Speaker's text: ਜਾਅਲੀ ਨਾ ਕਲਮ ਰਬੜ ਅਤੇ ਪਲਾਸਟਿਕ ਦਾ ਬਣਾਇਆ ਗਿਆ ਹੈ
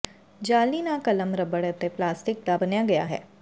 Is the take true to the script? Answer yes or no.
yes